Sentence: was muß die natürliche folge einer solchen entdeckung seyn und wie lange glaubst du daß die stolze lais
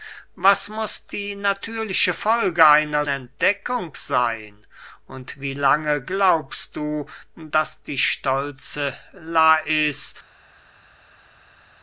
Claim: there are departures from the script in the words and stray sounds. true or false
true